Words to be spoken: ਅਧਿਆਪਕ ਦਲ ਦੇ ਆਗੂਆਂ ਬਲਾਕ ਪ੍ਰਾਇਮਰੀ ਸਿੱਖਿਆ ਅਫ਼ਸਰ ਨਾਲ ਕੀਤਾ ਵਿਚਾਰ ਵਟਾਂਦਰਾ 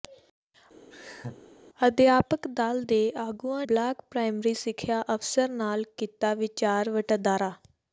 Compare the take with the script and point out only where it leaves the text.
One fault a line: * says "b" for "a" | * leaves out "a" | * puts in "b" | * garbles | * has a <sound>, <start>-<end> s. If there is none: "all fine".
* has a laugh, 0.9-1.4 s